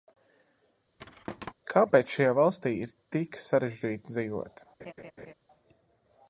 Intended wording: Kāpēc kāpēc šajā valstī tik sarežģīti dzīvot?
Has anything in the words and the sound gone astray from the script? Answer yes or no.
yes